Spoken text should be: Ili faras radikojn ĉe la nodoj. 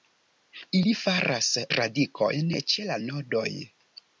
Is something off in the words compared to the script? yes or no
no